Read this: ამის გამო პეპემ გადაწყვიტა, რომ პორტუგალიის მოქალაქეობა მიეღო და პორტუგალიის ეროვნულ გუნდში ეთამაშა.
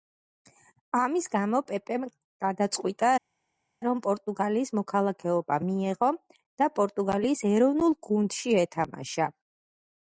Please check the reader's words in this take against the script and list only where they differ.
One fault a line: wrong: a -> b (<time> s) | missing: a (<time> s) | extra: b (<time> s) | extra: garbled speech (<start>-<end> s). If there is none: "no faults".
no faults